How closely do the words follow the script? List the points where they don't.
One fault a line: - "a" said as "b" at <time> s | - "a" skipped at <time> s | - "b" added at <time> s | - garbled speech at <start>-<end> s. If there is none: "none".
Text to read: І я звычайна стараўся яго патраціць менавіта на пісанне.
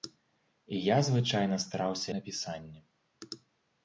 - "яго патраціць менавіта" skipped at 2.1 s